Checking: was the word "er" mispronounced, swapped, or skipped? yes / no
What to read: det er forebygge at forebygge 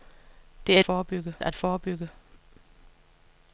no